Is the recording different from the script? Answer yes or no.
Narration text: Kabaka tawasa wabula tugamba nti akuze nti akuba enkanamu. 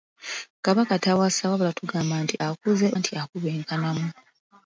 no